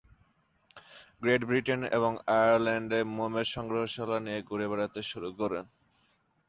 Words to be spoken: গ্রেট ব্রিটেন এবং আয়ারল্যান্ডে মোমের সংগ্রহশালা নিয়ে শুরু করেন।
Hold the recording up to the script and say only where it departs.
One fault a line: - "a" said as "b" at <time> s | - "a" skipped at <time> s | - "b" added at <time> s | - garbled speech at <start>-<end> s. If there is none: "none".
- "ঘুরে বেড়াতে" added at 4.5 s